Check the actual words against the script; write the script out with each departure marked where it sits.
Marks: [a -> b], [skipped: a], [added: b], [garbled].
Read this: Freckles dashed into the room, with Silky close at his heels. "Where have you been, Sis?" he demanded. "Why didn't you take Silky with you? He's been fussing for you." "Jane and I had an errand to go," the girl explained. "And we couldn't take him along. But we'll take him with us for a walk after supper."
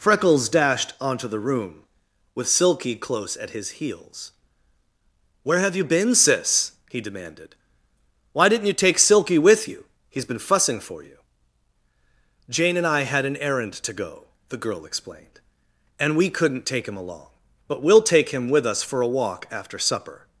Freckles dashed [into -> onto] the room, with Silky close at his heels. "Where have you been, Sis?" he demanded. "Why didn't you take Silky with you? He's been fussing for you." "Jane and I had an errand to go," the girl explained. "And we couldn't take him along. But we'll take him with us for a walk after supper."